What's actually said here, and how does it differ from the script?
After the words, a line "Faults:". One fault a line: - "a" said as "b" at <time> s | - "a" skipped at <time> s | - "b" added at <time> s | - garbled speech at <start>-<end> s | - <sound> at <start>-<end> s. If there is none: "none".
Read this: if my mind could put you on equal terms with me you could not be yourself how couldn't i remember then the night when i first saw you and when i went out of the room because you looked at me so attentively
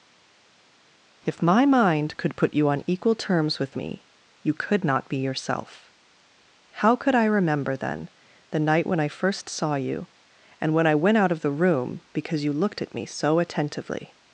if my mind could put you on equal terms with me you could not be yourself how could i remember then the night when i first saw you and when i went out of the room because you looked at me so attentively
Faults:
- "couldn't" said as "could" at 7.0 s